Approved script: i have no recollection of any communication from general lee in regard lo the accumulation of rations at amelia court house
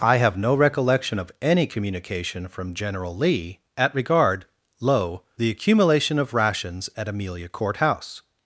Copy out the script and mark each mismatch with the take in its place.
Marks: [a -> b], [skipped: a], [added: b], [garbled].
i have no recollection of any communication from general lee [in -> at] regard lo the accumulation of rations at amelia court house